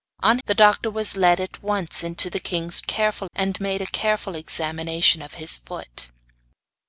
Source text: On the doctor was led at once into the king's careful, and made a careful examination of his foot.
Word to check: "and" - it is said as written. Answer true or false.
true